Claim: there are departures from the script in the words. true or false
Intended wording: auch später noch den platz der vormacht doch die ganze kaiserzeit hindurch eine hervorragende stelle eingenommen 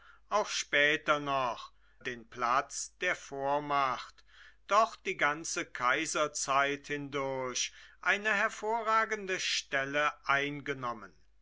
false